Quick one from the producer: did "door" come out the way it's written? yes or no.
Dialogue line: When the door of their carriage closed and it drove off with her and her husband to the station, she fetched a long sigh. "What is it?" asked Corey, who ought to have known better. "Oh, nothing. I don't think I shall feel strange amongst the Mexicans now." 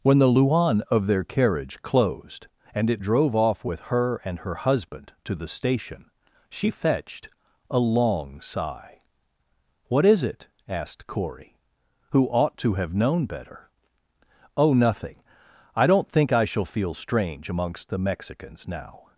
no